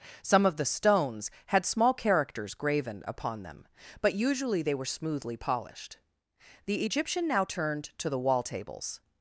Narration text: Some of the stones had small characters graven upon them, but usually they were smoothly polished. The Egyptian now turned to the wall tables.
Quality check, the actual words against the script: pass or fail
pass